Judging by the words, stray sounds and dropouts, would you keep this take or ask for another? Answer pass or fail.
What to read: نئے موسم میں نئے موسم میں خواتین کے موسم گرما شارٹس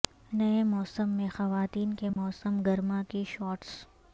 fail